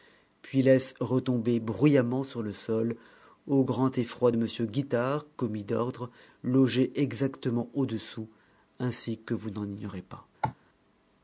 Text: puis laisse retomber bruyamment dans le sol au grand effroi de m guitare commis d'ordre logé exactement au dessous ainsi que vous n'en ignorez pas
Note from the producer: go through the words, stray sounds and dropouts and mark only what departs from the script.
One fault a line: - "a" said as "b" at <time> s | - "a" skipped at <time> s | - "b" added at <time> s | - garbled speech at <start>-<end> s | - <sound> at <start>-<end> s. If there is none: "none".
- "dans" said as "sur" at 2.2 s
- cough at 10.4-10.5 s